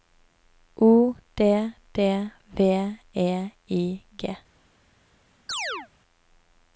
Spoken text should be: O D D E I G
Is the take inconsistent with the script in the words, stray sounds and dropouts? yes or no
yes